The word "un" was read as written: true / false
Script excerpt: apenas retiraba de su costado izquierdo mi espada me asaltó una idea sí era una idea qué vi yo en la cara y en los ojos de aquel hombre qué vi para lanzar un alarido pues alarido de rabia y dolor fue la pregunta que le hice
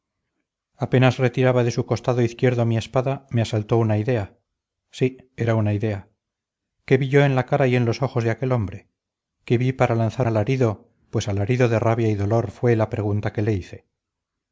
false